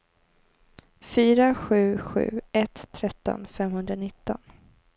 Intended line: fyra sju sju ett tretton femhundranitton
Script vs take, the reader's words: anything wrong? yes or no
no